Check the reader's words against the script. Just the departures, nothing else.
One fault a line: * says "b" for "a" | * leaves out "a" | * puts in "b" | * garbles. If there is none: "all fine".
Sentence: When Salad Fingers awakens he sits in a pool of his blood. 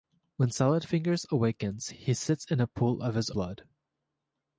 all fine